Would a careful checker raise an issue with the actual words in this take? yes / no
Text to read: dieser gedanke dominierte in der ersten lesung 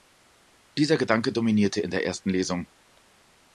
no